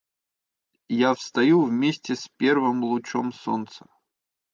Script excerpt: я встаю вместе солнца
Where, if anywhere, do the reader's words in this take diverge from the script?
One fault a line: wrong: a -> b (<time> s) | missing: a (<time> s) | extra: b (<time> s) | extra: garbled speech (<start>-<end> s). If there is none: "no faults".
extra: с первым лучом (2.1 s)